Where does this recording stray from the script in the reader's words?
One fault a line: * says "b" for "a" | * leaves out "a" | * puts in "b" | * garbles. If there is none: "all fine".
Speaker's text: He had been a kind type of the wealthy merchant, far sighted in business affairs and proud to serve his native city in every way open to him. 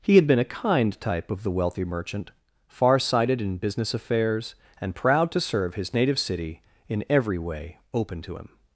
all fine